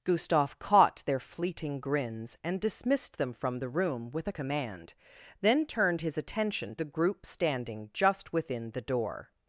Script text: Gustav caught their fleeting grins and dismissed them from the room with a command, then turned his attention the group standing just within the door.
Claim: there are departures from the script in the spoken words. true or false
false